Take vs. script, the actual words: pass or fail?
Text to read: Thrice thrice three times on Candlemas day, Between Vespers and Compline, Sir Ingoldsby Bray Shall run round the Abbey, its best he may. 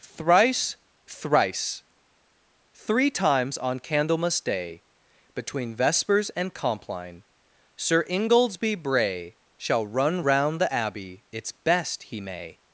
pass